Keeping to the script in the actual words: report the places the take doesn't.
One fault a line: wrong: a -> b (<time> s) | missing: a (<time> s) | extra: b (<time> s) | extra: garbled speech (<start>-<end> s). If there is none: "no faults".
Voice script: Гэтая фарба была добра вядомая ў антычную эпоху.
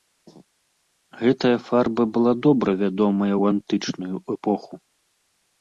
no faults